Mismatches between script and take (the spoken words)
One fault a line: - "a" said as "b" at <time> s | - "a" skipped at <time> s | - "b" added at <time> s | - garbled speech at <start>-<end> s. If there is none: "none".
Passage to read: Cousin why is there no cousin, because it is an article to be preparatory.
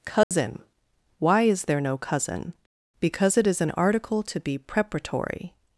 none